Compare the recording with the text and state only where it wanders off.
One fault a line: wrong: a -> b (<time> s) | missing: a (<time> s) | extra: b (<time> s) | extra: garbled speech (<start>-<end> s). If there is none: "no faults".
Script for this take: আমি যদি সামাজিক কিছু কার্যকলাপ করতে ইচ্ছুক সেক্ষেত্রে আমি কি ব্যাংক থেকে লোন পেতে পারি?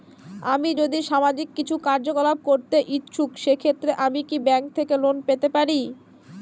no faults